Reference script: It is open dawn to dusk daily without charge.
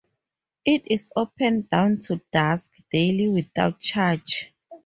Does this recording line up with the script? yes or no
yes